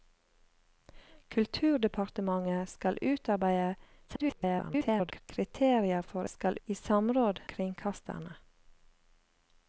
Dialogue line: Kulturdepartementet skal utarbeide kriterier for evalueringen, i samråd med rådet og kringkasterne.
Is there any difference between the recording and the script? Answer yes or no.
yes